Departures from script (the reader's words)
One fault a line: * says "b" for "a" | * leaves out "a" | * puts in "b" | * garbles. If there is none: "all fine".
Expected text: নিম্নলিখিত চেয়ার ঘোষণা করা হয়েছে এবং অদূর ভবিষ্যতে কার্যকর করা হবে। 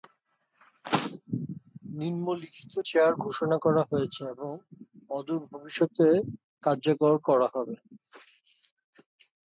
all fine